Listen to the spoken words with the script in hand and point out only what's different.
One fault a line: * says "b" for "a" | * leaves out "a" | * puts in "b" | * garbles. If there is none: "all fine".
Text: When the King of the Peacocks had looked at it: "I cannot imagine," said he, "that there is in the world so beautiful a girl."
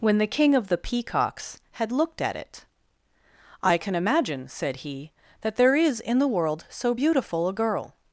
* says "can" for "cannot"